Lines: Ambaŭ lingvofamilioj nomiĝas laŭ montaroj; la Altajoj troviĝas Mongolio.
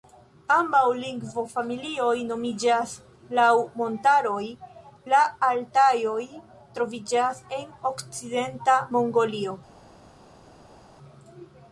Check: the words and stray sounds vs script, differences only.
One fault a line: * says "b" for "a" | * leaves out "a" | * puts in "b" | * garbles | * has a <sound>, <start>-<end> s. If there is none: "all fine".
* puts in "en okcidenta"